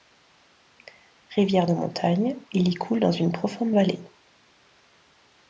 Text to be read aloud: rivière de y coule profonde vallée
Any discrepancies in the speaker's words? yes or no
yes